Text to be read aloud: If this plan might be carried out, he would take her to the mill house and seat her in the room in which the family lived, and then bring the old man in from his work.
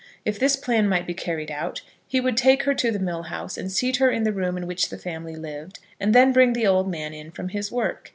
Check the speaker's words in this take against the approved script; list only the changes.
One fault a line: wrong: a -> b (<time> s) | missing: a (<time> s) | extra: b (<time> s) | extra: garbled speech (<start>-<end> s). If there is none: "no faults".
no faults